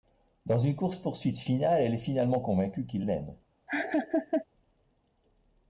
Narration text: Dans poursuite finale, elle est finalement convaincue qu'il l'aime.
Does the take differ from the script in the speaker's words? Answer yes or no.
yes